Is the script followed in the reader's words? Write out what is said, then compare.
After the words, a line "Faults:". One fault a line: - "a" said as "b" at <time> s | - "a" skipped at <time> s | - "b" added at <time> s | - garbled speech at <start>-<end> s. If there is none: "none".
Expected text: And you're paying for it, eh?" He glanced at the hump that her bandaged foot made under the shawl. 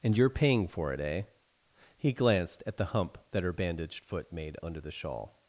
And you're paying for it, eh?" He glanced at the hump that her bandaged foot made under the shawl.
Faults:
none